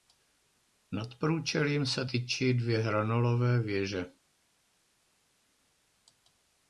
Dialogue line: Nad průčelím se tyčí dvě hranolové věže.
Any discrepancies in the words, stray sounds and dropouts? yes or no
no